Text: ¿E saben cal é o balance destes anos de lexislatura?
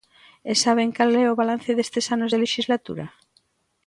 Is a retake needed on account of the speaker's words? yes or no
no